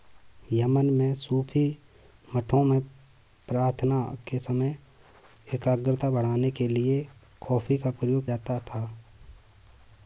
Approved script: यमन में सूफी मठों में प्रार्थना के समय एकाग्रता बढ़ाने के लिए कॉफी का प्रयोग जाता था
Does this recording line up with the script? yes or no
yes